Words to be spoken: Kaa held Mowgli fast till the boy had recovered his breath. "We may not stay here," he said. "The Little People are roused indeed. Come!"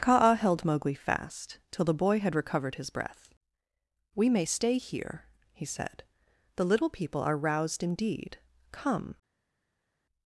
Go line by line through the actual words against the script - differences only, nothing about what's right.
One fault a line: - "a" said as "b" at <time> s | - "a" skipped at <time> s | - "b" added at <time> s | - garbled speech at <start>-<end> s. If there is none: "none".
- "not" skipped at 4.5 s